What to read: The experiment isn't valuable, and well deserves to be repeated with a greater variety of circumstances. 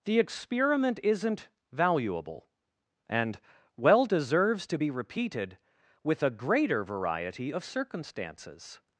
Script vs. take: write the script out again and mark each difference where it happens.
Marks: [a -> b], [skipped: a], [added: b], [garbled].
The experiment isn't valuable, and well deserves to be repeated with a greater variety of circumstances.